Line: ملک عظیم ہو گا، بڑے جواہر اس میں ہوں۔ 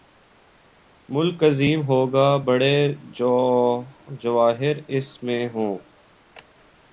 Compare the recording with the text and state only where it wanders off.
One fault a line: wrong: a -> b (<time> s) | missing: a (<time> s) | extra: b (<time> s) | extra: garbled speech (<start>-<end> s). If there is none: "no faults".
no faults